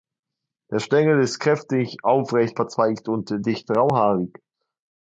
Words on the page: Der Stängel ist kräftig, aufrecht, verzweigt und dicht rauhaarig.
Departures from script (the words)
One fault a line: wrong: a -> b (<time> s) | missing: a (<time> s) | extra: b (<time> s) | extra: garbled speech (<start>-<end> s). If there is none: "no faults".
no faults